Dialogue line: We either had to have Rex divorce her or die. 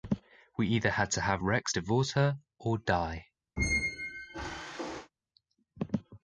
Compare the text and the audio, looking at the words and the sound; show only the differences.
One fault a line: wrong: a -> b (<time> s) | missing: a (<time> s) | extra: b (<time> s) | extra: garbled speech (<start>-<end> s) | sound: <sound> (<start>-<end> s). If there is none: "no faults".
sound: squeak (3.6-5.1 s)